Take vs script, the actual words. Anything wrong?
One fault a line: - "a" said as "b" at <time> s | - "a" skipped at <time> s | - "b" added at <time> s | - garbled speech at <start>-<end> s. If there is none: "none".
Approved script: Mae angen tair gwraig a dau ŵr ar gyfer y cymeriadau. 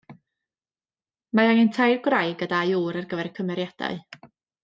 none